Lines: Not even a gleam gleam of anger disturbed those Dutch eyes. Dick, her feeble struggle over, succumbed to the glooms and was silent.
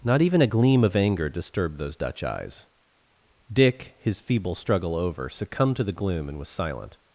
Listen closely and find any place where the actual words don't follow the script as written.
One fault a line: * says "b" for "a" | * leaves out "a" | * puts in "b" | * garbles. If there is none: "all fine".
* leaves out "gleam"
* says "his" for "her"
* says "gloom" for "glooms"